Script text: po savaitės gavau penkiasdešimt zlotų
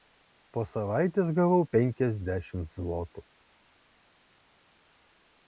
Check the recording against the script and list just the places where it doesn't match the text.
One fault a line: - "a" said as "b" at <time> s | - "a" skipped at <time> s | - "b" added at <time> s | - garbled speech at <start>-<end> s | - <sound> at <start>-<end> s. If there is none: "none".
none